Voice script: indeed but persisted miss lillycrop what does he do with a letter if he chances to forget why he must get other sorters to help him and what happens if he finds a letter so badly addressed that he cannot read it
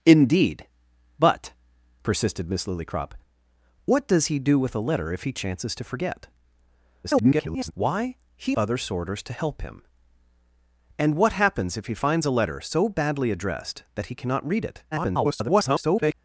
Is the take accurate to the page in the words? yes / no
no